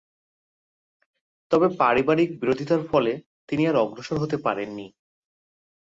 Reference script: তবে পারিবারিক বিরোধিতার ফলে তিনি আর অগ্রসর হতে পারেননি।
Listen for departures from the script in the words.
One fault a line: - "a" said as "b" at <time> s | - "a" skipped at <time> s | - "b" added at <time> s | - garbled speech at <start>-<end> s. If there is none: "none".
none